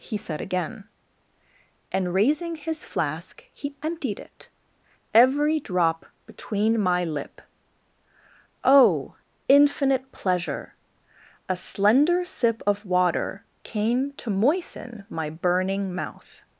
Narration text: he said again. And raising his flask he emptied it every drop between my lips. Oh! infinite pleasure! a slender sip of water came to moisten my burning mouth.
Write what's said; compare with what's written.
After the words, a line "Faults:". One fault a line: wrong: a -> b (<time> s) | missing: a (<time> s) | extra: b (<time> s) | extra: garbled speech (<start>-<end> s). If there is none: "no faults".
he said again. And raising his flask he emptied it every drop between my lip. Oh! infinite pleasure! a slender sip of water came to moisten my burning mouth.
Faults:
wrong: lips -> lip (7.0 s)